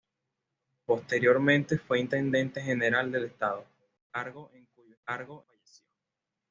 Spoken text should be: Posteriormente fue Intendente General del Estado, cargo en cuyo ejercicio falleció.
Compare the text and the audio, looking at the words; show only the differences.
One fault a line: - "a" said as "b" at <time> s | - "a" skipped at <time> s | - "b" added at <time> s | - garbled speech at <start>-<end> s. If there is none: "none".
- "ejercicio" said as "cargo" at 5.0 s